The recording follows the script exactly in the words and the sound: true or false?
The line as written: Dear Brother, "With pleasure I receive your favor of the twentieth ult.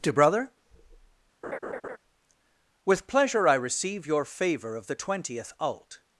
false